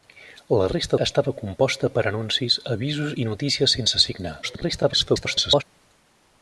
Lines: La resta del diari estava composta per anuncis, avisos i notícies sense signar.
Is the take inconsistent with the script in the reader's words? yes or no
yes